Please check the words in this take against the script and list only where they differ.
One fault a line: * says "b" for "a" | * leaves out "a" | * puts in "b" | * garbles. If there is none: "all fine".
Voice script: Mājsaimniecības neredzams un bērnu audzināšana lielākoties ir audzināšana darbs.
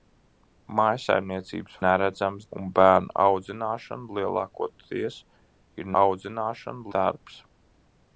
all fine